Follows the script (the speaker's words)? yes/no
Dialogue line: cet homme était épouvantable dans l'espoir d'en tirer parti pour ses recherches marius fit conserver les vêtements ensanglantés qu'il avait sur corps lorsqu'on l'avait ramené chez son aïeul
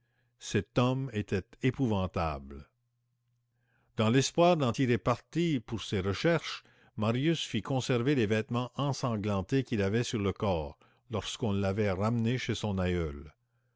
no